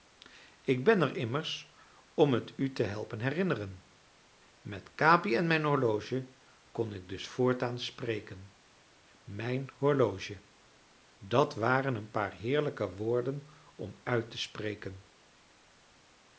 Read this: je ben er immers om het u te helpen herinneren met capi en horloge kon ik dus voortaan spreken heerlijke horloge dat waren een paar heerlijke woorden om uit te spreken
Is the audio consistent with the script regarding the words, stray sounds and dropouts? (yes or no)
no